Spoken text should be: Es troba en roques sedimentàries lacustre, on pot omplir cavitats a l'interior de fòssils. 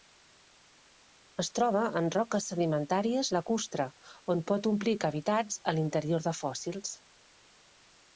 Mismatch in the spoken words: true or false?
false